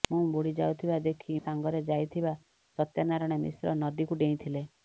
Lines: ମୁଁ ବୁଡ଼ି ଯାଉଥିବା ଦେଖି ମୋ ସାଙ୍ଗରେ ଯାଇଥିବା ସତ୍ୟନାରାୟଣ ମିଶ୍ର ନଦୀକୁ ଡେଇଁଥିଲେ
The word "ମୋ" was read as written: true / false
false